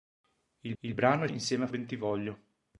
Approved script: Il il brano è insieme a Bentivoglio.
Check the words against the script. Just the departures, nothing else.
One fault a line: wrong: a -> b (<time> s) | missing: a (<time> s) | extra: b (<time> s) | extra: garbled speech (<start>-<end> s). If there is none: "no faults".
no faults